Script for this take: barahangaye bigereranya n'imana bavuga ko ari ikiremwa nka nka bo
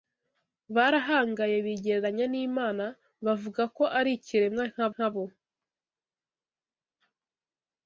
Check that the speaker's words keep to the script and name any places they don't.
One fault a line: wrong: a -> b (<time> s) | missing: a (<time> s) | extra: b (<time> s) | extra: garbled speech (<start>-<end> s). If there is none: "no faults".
no faults